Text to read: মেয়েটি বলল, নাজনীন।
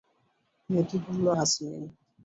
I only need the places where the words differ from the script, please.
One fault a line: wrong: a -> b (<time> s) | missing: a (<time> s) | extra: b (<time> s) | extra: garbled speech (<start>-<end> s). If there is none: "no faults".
no faults